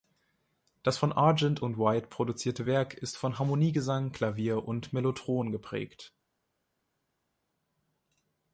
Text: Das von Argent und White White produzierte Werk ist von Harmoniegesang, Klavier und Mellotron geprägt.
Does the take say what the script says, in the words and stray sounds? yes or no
no